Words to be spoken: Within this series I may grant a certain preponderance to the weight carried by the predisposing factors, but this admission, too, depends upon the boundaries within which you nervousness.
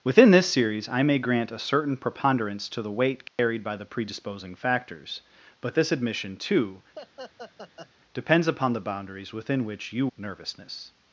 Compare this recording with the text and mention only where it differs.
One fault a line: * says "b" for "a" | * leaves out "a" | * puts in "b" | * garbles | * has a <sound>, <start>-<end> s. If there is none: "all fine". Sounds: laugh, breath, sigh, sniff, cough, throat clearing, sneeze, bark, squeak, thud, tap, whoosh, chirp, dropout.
* has a dropout, 3.3-3.4 s
* has a laugh, 7.0-7.9 s